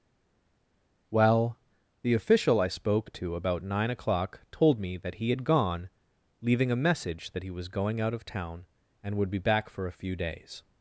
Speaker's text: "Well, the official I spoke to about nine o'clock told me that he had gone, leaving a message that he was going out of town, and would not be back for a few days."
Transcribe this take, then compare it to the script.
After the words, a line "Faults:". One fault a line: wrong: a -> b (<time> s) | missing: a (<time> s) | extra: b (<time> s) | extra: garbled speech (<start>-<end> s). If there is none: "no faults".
"Well, the official I spoke to about nine o'clock told me that he had gone, leaving a message that he was going out of town, and would be back for a few days."
Faults:
missing: not (9.3 s)